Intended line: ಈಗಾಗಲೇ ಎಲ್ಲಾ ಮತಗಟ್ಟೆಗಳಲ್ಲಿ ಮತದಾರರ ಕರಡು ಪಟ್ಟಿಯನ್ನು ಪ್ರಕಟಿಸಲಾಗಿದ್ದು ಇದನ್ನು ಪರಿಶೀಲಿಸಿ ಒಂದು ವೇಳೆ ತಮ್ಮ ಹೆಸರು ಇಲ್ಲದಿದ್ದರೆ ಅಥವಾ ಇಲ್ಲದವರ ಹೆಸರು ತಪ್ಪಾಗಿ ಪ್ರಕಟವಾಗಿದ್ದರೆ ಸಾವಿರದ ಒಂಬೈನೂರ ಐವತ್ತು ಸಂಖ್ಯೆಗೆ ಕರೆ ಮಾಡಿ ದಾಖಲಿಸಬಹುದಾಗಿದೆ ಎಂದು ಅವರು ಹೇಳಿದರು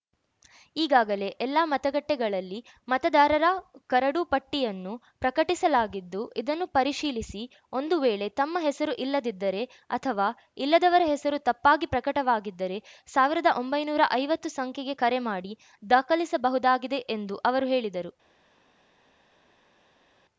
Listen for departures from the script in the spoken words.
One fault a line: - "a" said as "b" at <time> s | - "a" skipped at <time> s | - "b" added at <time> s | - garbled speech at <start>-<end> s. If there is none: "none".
none